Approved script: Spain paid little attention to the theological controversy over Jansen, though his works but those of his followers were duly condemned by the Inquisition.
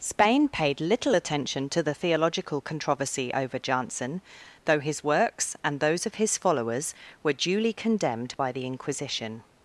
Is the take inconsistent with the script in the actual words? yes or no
yes